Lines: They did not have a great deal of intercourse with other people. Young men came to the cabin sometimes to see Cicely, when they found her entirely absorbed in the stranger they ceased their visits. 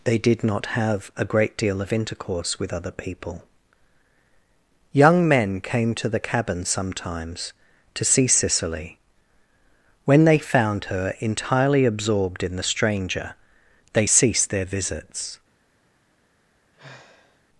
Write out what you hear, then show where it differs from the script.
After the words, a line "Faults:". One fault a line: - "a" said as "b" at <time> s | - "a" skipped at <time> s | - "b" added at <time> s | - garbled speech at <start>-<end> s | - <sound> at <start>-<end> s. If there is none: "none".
They did not have a great deal of intercourse with other people. Young men came to the cabin sometimes to see Cicely, when they found her entirely absorbed in the stranger they ceased their visits.
Faults:
- sigh at 16.7-17.4 s